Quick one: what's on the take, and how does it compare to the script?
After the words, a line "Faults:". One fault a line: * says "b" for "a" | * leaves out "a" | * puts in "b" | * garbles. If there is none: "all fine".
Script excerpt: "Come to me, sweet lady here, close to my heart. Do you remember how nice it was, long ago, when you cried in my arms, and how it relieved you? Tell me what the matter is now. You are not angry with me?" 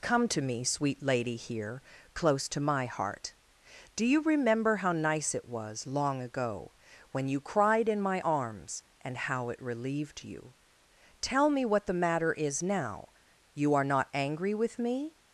"Come to me, sweet lady here, close to my heart. Do you remember how nice it was, long ago, when you cried in my arms, and how it relieved you? Tell me what the matter is now. You are not angry with me?"
Faults:
all fine